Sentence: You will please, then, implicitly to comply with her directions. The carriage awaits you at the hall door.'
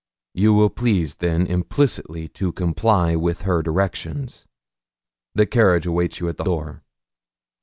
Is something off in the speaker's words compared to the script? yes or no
yes